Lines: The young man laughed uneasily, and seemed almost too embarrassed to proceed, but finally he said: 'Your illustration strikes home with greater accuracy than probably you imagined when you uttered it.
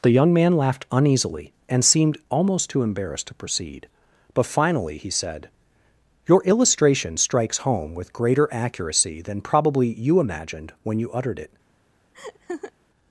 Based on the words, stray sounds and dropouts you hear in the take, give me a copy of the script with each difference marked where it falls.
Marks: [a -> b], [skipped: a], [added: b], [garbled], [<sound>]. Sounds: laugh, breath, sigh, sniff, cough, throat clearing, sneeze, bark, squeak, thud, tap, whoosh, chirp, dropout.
The young man laughed uneasily, and seemed almost too embarrassed to proceed, but finally he said: 'Your illustration strikes home with greater accuracy than probably you imagined when you uttered it. [laugh]